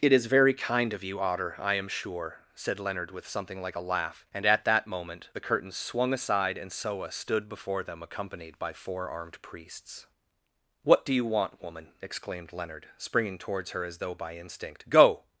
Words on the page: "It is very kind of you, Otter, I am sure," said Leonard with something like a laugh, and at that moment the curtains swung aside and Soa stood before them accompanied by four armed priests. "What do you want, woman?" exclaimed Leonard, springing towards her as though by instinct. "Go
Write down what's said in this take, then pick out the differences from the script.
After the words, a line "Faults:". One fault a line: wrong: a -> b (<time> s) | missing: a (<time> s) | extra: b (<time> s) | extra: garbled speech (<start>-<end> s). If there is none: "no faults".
"It is very kind of you, Otter, I am sure," said Leonard with something like a laugh, and at that moment the curtains swung aside and Soa stood before them accompanied by four armed priests. "What do you want, woman?" exclaimed Leonard, springing towards her as though by instinct. "Go
Faults:
no faults